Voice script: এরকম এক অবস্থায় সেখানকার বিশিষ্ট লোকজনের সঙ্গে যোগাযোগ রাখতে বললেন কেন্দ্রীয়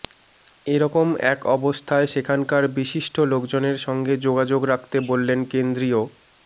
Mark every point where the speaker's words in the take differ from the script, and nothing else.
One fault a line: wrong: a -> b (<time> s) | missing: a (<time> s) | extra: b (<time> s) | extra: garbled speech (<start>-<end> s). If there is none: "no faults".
no faults